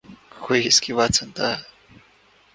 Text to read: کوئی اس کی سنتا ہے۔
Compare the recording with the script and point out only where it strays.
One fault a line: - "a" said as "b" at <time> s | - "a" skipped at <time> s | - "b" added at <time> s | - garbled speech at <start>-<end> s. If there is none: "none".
- "بات" added at 0.9 s